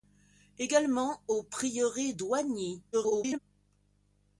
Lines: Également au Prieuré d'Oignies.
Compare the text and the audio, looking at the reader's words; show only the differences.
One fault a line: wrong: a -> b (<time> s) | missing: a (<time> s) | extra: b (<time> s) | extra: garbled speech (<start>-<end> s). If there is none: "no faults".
extra: garbled speech (2.9-3.4 s)